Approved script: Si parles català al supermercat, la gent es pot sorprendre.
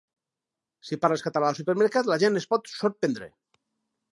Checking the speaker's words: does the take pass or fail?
pass